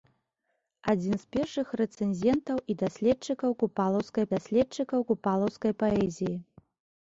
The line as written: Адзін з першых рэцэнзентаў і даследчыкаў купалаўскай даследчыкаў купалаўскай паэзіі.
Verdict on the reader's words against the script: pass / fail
pass